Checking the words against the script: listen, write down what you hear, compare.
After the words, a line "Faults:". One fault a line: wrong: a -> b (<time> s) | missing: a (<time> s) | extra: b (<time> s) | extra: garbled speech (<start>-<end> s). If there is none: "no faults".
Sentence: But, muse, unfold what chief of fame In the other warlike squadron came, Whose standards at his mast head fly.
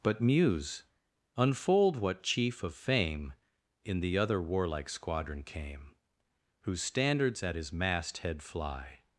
But, muse, unfold what chief of fame In the other warlike squadron came, Whose standards at his mast head fly.
Faults:
no faults